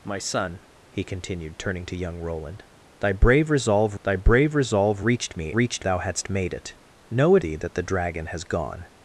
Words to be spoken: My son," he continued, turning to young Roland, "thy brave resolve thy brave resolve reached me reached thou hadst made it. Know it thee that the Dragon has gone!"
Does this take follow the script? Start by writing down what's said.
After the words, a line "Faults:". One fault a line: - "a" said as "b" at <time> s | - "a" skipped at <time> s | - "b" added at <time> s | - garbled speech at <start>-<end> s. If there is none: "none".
My son," he continued, turning to young Roland, "thy brave resolve thy brave resolve reached me reached thou hadst made it. Know it thee that the Dragon has gone!"
Faults:
none